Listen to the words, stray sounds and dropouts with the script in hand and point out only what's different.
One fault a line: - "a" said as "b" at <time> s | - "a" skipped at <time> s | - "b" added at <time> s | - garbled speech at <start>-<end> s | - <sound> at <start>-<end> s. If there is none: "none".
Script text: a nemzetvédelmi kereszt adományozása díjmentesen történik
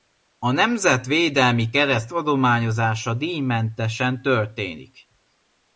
none